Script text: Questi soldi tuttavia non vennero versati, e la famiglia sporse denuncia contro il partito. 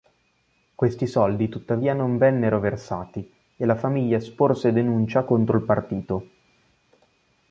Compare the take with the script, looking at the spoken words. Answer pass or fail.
pass